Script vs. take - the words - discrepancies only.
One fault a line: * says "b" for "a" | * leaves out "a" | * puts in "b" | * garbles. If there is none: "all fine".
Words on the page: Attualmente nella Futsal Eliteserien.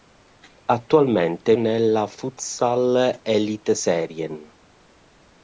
all fine